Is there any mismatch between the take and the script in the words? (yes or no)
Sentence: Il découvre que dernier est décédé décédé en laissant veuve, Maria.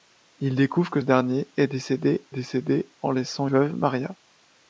no